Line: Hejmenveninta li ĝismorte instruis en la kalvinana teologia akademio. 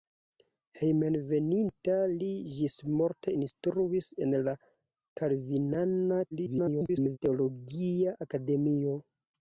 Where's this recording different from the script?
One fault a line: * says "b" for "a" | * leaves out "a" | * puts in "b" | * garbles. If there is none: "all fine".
* garbles